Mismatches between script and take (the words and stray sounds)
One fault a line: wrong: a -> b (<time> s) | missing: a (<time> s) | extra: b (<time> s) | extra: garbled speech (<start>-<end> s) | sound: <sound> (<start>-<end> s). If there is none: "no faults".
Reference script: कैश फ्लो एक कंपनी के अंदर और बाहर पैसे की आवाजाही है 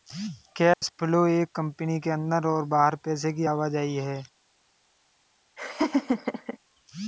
sound: dropout (0.7-0.8 s)
sound: laugh (5.6-6.6 s)